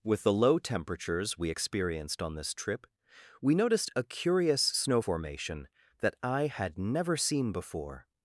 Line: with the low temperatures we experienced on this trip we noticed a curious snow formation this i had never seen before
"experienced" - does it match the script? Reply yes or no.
yes